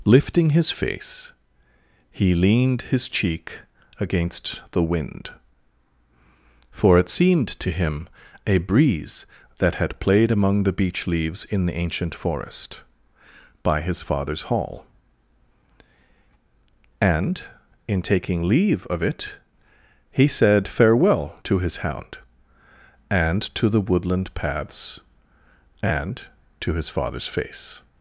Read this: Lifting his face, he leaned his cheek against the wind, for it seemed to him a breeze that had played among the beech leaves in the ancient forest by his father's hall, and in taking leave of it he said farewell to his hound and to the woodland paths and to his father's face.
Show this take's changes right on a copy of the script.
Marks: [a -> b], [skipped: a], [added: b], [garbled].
Lifting his face, he leaned his cheek against the wind, for it seemed to him a breeze that had played among the beech leaves in the ancient forest by his father's hall, and in taking leave of it he said farewell to his hound and to the woodland paths and to his father's face.